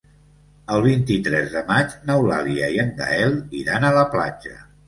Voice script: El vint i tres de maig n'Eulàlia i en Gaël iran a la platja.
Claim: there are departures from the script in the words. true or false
false